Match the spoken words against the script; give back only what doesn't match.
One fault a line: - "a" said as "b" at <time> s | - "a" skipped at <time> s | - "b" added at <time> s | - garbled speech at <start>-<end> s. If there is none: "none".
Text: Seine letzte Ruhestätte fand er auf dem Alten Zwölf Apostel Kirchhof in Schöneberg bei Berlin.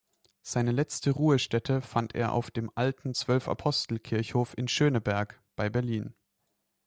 none